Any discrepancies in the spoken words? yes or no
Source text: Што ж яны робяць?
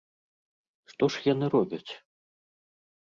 no